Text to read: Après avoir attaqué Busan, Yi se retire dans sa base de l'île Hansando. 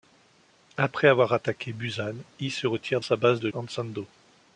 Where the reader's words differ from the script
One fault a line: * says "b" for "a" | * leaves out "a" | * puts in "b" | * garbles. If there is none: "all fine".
* leaves out "dans"
* leaves out "l'île"